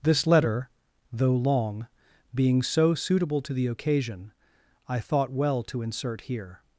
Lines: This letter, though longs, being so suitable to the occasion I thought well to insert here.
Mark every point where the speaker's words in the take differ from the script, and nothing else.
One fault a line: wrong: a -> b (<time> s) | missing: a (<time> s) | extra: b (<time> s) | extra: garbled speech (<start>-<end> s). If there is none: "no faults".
wrong: longs -> long (1.4 s)